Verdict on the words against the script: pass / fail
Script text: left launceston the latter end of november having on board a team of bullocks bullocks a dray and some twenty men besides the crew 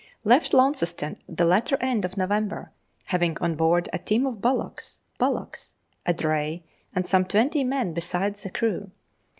pass